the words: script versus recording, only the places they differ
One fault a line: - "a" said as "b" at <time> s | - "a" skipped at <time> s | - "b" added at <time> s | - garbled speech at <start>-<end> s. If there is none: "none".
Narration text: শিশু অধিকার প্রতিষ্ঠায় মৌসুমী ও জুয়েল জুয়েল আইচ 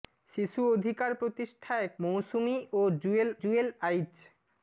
none